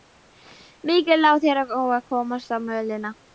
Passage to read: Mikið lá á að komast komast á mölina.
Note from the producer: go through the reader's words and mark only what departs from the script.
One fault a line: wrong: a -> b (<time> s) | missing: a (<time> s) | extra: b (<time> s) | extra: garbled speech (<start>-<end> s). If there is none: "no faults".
extra: þér (1.4 s)
missing: komast (2.6 s)